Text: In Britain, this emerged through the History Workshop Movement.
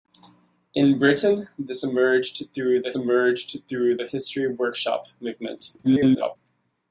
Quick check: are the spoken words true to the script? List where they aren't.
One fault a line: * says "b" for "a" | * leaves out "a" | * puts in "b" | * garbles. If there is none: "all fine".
* puts in "emerged through the"
* garbles